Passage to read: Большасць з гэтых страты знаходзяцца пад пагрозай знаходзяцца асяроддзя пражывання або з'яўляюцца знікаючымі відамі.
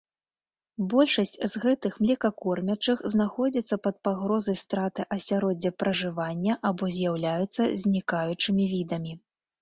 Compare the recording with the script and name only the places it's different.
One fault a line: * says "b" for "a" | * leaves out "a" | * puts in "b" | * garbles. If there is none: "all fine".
* says "млекакормячых" for "страты"
* says "страты" for "знаходзяцца"